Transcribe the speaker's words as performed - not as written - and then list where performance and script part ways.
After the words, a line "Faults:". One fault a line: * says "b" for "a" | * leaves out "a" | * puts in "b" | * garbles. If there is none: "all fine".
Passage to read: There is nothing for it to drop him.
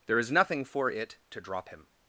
There is nothing for it to drop him.
Faults:
all fine